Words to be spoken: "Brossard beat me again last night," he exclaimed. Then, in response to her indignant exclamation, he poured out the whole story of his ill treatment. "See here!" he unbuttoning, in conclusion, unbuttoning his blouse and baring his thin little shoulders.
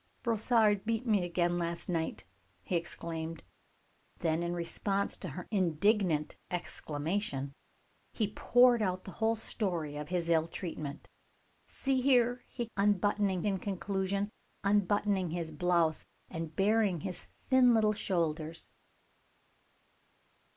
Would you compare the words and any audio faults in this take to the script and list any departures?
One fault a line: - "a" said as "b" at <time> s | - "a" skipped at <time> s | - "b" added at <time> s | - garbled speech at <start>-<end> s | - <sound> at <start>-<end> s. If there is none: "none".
none